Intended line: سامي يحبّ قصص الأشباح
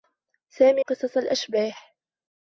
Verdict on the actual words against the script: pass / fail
fail